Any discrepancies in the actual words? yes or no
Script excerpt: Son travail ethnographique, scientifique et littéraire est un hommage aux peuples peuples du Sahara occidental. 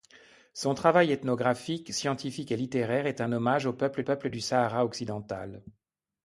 no